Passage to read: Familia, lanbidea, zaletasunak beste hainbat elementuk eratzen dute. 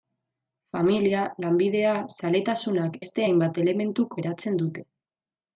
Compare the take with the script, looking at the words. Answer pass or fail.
pass